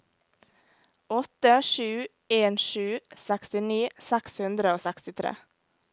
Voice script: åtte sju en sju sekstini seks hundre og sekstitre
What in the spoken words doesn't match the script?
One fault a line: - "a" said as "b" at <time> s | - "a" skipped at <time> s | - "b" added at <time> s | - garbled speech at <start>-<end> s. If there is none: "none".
none